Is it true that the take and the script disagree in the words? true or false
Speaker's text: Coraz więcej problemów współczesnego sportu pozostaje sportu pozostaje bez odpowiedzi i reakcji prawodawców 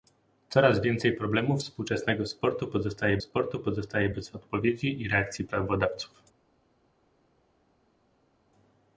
false